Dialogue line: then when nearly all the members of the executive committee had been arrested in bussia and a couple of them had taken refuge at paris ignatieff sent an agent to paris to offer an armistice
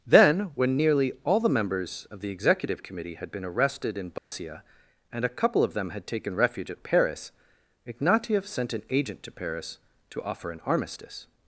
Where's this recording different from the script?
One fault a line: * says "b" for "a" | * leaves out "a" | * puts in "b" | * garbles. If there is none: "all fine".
all fine